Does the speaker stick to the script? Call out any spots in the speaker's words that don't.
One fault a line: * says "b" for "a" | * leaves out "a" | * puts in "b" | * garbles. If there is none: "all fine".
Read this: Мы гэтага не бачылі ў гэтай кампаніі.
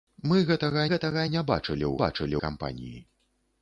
* puts in "гэтага"
* says "бачылі" for "гэтай"